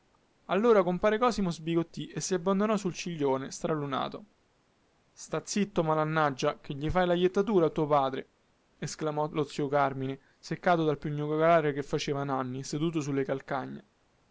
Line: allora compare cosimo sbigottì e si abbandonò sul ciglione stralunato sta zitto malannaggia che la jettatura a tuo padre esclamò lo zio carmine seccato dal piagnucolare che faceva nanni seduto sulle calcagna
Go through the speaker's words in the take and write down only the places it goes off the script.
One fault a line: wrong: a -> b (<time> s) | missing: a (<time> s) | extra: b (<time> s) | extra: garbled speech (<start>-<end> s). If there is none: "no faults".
extra: gli fai (6.7 s)